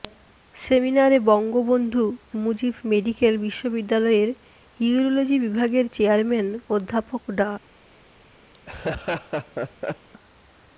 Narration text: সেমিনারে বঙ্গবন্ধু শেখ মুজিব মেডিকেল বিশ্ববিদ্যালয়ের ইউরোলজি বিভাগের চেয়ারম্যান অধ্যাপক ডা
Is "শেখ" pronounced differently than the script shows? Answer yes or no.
yes